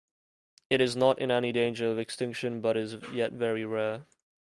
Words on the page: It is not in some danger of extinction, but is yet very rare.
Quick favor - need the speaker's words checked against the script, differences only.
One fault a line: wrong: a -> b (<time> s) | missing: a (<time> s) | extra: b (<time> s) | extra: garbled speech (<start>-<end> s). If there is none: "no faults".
wrong: some -> any (1.3 s)